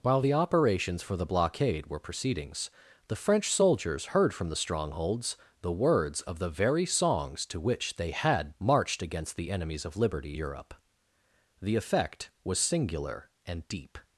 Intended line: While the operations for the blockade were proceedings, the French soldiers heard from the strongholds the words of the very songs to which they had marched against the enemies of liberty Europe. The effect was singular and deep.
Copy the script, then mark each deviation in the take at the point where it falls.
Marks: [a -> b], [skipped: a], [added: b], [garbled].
While the operations for the blockade were proceedings, the French soldiers heard from the strongholds the words of the very songs to which they had marched against the enemies of liberty Europe. The effect was singular and deep.